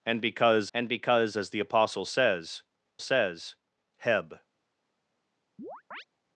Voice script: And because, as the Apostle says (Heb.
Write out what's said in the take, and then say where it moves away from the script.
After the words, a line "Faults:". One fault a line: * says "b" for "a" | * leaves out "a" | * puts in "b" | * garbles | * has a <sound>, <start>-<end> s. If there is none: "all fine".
And because and because, as the Apostle says says (Heb.
Faults:
* puts in "and because"
* puts in "says"
* has a chirp, 5.6-6.0 s